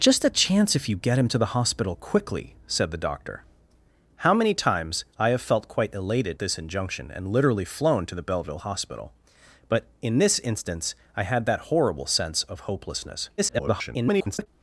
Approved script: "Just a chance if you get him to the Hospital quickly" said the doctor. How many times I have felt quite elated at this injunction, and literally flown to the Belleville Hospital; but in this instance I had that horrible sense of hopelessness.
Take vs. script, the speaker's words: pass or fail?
fail